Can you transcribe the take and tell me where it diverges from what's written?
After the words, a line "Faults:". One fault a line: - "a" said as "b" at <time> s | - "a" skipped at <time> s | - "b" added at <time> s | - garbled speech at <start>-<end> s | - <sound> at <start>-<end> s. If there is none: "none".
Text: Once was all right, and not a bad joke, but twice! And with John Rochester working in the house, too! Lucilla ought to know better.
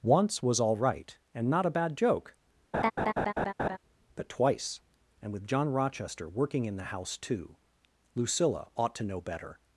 Once was all right, and not a bad joke, but twice! And with John Rochester working in the house, too! Lucilla ought to know better.
Faults:
- laugh at 2.7-3.8 s